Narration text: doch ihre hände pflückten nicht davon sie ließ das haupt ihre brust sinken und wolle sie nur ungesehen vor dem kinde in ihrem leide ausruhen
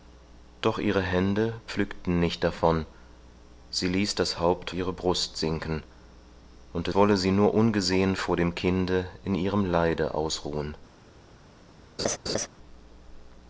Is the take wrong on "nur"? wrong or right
right